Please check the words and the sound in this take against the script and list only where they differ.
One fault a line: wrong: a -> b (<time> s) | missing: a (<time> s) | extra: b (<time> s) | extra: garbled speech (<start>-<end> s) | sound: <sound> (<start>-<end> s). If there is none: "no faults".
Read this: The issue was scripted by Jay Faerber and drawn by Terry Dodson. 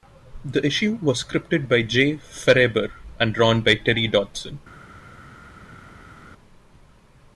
no faults